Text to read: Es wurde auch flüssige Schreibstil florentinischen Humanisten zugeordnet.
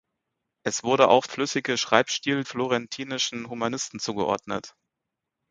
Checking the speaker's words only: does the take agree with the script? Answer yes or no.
yes